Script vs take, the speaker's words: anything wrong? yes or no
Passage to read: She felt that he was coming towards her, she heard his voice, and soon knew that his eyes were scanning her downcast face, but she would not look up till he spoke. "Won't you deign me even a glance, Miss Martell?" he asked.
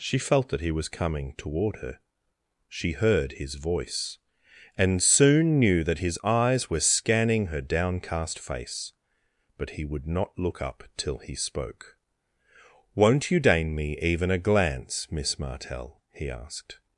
yes